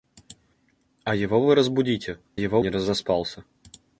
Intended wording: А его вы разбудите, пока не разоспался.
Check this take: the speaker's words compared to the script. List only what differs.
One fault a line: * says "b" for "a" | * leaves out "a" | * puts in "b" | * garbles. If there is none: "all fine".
* says "его" for "пока"